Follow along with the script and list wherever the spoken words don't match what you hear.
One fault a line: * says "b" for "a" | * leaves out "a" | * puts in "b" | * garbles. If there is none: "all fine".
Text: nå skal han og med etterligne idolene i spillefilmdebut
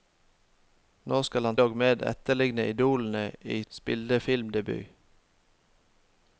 all fine